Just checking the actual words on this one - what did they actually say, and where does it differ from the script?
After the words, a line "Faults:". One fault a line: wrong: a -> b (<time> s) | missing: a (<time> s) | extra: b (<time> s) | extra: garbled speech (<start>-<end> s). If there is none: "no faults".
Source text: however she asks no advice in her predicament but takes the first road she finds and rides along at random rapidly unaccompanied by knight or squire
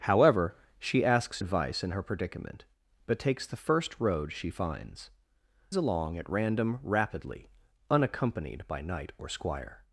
however she asks advice in her predicament but takes the first road she finds along at random rapidly unaccompanied by knight or squire
Faults:
missing: no (1.4 s)
missing: and rides (5.1 s)